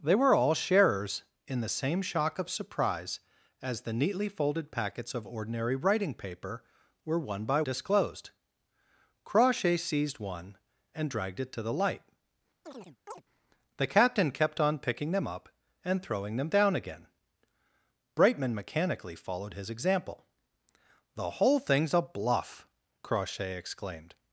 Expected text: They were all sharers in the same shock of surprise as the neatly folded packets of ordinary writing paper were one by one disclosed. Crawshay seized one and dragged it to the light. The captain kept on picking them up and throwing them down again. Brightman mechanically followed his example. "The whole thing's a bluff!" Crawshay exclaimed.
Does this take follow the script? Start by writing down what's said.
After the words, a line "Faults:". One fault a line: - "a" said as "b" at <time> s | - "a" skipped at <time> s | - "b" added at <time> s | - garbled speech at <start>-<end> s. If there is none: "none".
They were all sharers in the same shock of surprise as the neatly folded packets of ordinary writing paper were one by disclosed. Crawshay seized one and dragged it to the light. The captain kept on picking them up and throwing them down again. Brightman mechanically followed his example. "The whole thing's a bluff!" Crawshay exclaimed.
Faults:
- "one" skipped at 7.6 s